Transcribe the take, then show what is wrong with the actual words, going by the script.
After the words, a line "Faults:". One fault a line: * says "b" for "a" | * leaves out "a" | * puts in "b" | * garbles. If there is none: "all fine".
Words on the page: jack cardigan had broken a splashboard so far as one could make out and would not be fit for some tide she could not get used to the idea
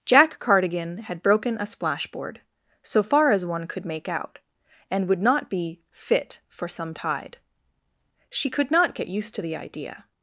jack cardigan had broken a splashboard so far as one could make out and would not be fit for some tide she could not get used to the idea
Faults:
all fine